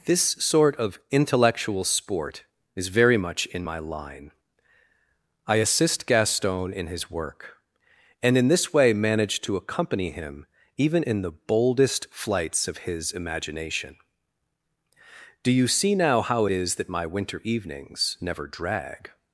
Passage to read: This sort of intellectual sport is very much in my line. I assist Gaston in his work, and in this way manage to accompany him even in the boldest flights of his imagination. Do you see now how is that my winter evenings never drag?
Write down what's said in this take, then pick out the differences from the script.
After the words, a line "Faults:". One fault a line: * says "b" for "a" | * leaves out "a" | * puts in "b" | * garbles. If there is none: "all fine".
This sort of intellectual sport is very much in my line. I assist Gaston in his work, and in this way manage to accompany him even in the boldest flights of his imagination. Do you see now how is that my winter evenings never drag?
Faults:
all fine